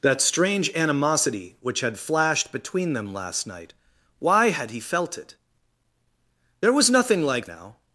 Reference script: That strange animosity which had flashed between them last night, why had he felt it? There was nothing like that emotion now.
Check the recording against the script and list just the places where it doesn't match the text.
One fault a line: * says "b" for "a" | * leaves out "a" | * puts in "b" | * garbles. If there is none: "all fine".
* leaves out "that emotion"